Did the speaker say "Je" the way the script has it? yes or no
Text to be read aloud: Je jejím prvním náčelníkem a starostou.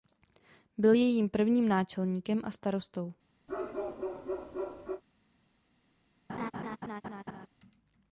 no